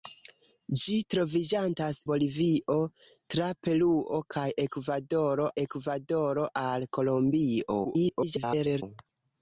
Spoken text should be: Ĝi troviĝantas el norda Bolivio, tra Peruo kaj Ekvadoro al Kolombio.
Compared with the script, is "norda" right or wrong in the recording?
wrong